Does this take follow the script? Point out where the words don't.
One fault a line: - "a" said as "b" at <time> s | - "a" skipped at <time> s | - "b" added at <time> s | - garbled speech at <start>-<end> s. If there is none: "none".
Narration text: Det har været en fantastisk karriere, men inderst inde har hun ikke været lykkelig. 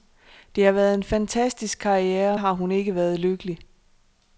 - "men inderst inde" skipped at 2.4 s